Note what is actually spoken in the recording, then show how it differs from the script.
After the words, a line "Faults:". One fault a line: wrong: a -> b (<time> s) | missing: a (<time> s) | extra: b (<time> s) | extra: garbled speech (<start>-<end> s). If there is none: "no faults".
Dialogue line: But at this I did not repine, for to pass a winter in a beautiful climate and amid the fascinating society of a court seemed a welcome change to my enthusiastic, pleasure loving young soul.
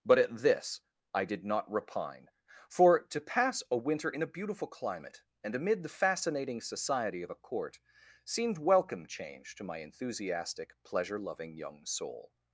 But at this I did not repine, for to pass a winter in a beautiful climate and amid the fascinating society of a court seemed welcome change to my enthusiastic, pleasure loving young soul.
Faults:
missing: a (8.6 s)